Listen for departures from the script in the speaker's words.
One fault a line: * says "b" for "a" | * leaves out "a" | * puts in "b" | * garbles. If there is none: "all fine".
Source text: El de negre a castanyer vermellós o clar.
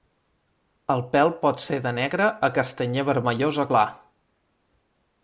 * puts in "pèl pot ser"